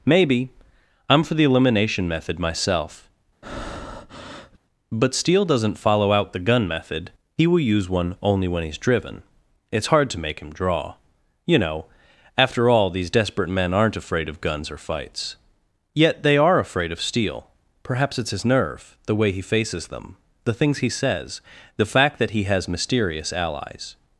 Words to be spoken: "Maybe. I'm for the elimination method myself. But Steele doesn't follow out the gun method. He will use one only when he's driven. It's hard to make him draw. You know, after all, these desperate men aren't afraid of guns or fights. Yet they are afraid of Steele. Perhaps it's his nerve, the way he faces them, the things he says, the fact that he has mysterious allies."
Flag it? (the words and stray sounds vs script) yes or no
yes